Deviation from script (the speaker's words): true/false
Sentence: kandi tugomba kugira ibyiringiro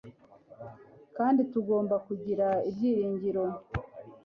false